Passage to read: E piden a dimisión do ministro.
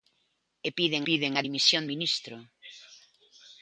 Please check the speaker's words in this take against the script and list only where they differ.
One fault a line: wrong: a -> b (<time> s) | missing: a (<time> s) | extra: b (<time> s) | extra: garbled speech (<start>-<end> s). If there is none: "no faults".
extra: piden (1.1 s)
missing: do (1.8 s)